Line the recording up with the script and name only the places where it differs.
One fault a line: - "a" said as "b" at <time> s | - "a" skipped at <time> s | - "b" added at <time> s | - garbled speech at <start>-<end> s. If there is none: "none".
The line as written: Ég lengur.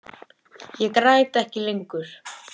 - "græt ekki" added at 1.0 s